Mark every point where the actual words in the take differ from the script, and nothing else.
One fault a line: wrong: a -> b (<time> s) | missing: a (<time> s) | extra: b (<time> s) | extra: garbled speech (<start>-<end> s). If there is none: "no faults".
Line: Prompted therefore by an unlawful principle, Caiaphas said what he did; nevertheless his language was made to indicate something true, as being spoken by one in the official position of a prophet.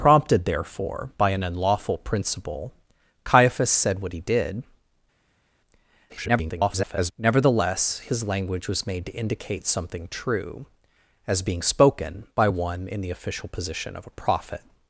extra: garbled speech (6.1-7.1 s)